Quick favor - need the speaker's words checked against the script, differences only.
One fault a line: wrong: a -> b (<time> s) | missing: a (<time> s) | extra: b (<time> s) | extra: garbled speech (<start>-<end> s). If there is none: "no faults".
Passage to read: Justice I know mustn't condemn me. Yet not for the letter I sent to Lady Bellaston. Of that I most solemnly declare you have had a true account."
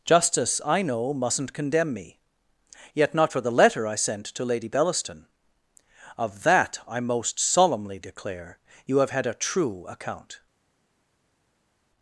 no faults